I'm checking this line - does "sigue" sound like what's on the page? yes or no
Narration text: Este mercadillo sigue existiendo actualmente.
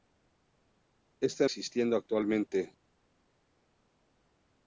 no